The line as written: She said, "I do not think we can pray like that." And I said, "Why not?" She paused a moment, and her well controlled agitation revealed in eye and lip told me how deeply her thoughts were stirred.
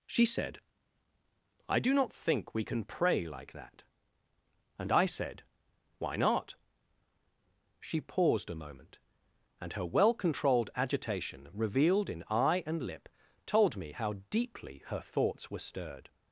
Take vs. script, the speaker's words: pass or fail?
pass